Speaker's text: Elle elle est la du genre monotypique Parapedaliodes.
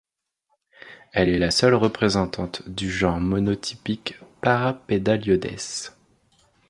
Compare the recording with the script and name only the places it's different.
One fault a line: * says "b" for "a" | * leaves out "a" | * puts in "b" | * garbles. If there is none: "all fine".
* leaves out "elle"
* puts in "seule représentante"